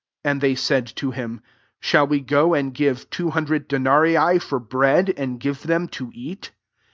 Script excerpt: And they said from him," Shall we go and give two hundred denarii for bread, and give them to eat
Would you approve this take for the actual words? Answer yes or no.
no